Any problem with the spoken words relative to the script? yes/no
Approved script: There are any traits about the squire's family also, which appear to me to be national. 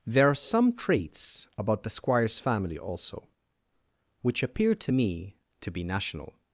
yes